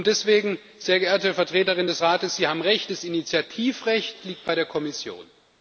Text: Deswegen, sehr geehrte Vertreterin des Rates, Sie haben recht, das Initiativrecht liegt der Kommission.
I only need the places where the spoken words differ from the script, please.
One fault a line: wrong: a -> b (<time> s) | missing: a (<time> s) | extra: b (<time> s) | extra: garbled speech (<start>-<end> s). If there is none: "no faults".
extra: bei (4.4 s)